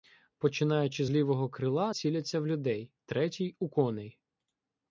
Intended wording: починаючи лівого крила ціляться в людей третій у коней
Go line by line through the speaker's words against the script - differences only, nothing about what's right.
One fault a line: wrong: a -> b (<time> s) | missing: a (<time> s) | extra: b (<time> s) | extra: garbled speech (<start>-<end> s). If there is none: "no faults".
no faults